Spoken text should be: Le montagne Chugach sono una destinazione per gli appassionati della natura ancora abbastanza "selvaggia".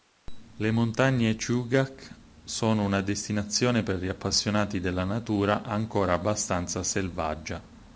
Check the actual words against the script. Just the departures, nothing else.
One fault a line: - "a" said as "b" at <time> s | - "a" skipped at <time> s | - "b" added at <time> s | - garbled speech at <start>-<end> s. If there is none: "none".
none